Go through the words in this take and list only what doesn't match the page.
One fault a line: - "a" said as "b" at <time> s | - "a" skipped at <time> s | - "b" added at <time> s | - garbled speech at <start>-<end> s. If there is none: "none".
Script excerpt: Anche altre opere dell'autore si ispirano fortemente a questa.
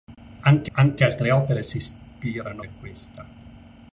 - "anche" added at 0.7 s
- "dell'autore" skipped at 1.6 s
- "fortemente" skipped at 2.6 s